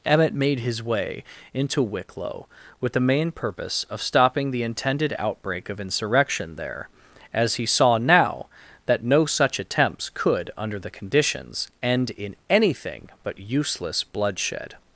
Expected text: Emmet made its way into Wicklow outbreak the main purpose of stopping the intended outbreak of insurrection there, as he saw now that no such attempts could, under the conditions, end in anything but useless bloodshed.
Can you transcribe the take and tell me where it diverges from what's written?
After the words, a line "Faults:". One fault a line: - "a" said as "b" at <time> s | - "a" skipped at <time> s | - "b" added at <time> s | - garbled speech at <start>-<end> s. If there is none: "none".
Emmet made his way into Wicklow with the main purpose of stopping the intended outbreak of insurrection there, as he saw now that no such attempts could, under the conditions, end in anything but useless bloodshed.
Faults:
- "its" said as "his" at 0.6 s
- "outbreak" said as "with" at 2.8 s